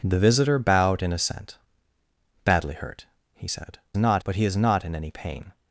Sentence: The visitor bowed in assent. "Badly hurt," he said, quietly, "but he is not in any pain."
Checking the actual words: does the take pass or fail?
fail